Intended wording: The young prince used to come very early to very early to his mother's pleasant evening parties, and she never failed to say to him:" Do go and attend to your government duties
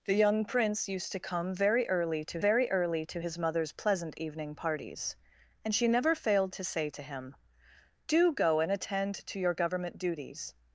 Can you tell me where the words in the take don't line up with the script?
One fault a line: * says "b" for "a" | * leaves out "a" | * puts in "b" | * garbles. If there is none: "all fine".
all fine